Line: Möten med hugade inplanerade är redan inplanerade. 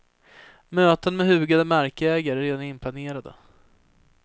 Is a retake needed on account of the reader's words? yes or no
yes